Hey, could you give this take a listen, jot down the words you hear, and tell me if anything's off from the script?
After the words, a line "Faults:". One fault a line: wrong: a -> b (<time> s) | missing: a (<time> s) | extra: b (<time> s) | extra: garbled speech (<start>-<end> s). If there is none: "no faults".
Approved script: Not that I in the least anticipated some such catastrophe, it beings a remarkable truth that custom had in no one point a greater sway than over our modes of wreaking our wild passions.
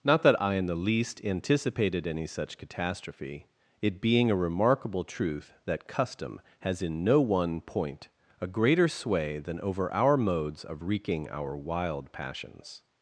Not that I in the least anticipated any such catastrophe, it being a remarkable truth that custom has in no one point a greater sway than over our modes of wreaking our wild passions.
Faults:
wrong: some -> any (2.1 s)
wrong: beings -> being (4.0 s)
wrong: had -> has (6.6 s)